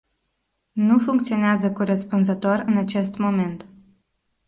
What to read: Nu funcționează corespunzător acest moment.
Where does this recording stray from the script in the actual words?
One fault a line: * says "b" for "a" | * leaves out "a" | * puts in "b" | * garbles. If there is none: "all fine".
* puts in "în"